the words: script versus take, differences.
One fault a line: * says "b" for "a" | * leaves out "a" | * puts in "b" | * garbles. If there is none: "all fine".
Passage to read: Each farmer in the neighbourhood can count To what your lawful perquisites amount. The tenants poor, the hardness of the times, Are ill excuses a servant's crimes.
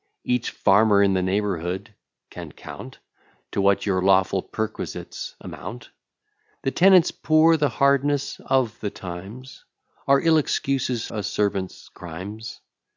all fine